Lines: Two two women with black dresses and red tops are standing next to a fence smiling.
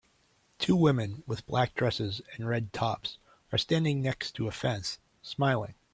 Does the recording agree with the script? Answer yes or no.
no